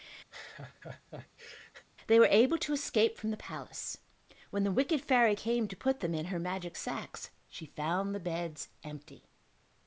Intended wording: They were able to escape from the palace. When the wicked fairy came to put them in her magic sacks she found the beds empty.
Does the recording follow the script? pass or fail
pass